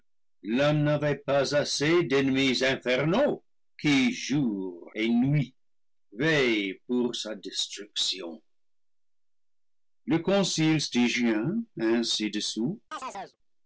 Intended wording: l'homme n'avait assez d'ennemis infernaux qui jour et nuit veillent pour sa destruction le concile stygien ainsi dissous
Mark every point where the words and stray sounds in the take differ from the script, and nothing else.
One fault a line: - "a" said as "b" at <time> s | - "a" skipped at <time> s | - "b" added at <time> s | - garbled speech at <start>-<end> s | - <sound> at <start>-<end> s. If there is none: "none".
- "pas" added at 1.2 s
- chirp at 12.9-13.4 s